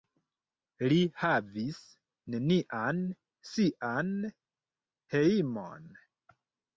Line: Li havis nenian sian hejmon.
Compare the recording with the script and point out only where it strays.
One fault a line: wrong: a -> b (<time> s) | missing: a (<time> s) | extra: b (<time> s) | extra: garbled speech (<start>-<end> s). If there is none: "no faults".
no faults